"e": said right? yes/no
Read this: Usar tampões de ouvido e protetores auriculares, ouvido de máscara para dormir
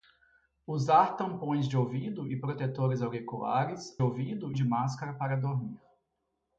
yes